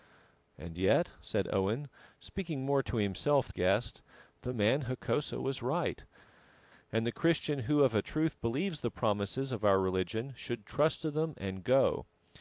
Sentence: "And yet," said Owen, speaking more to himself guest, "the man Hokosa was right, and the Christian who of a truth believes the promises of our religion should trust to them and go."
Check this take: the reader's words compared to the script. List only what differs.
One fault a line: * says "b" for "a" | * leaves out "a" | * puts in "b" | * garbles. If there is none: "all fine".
all fine